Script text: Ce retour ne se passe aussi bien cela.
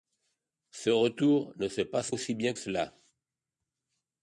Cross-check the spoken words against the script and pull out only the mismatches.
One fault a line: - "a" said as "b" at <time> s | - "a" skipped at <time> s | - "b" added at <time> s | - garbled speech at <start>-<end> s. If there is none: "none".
none